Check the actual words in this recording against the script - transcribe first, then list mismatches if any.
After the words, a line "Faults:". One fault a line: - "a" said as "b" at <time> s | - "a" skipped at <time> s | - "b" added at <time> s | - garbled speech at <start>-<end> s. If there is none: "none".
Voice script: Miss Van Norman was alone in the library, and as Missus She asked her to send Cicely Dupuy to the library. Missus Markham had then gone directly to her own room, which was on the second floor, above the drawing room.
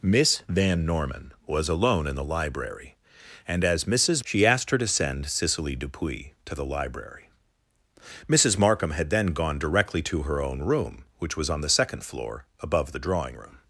Miss Van Norman was alone in the library, and as Missus She asked her to send Cicely Dupuy to the library. Missus Markham had then gone directly to her own room, which was on the second floor, above the drawing room.
Faults:
none